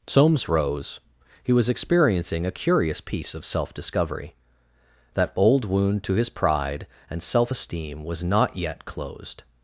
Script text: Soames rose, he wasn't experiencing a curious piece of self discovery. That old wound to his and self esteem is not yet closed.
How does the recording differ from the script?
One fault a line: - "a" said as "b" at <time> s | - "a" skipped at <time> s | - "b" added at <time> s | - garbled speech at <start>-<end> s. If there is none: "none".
- "wasn't" said as "was" at 1.5 s
- "pride" added at 6.3 s
- "is" said as "was" at 8.0 s